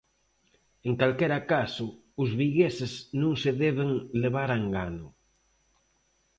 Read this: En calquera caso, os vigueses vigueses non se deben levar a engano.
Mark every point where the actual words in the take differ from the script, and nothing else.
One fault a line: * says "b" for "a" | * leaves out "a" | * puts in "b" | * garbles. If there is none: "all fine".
* leaves out "vigueses"